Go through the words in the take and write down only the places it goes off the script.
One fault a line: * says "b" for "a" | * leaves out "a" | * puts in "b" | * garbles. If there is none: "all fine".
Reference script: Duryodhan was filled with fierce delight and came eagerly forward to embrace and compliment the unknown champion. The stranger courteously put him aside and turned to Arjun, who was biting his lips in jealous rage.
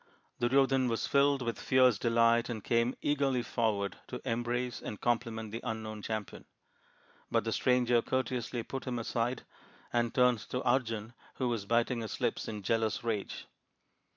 * puts in "But"